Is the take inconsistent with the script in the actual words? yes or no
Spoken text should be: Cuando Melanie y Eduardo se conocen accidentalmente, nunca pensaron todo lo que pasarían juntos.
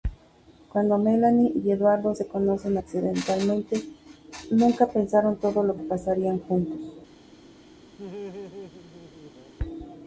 no